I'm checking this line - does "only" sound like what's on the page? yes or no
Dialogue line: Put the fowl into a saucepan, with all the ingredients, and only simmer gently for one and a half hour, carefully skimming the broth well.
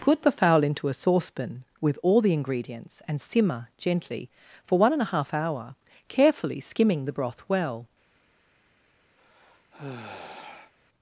no